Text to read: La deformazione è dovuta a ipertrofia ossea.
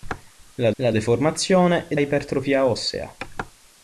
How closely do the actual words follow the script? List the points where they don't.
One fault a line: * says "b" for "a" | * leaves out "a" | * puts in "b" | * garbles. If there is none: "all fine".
* puts in "la"
* leaves out "dovuta"